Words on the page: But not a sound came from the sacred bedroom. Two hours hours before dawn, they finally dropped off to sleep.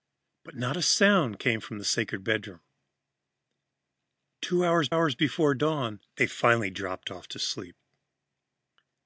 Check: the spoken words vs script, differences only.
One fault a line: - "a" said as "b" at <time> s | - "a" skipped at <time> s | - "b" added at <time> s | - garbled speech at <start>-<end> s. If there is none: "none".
none